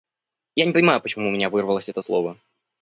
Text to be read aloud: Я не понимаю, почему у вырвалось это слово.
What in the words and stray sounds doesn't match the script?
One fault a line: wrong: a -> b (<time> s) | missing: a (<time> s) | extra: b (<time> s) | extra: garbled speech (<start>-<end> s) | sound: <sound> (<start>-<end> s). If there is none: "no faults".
extra: меня (1.3 s)